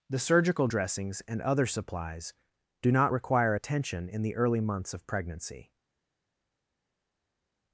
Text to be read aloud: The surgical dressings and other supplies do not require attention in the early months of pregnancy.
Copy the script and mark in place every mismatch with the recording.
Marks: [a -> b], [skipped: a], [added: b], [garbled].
The surgical dressings and other supplies do not require attention in the early months of pregnancy.